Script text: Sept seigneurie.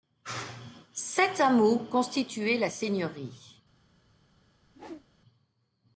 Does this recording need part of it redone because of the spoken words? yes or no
yes